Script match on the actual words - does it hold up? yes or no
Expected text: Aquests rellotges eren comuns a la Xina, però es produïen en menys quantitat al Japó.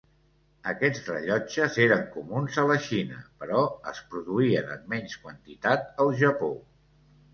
yes